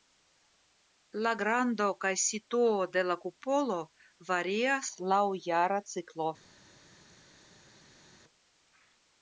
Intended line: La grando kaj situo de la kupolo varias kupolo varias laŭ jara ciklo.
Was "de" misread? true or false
false